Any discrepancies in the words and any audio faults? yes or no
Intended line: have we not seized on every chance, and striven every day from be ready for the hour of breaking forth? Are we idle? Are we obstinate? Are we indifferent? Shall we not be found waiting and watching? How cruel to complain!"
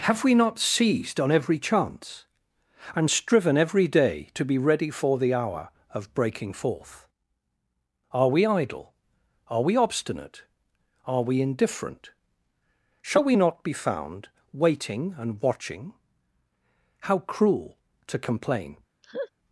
yes